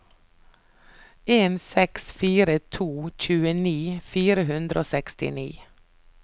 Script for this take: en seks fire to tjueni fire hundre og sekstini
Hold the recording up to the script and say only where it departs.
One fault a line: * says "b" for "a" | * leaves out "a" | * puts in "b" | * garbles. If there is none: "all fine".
all fine